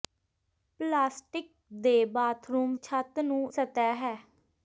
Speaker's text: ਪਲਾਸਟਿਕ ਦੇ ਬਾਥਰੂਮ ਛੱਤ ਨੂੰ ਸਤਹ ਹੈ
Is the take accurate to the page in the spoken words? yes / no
yes